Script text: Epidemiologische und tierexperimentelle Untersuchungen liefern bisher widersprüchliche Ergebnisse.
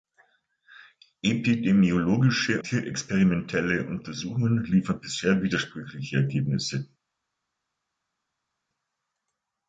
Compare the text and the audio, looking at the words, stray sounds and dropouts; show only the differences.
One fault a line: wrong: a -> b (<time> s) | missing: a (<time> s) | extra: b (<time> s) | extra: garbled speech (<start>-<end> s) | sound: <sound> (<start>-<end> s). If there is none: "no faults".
missing: und (2.6 s)